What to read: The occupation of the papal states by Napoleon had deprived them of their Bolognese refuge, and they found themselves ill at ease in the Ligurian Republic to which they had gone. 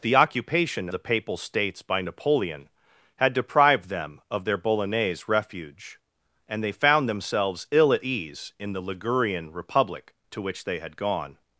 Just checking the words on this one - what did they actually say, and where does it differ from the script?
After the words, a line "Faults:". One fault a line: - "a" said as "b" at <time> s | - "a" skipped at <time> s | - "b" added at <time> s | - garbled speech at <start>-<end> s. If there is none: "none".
The occupation the papal states by Napoleon had deprived them of their Bolognese refuge, and they found themselves ill at ease in the Ligurian Republic to which they had gone.
Faults:
- "of" skipped at 0.9 s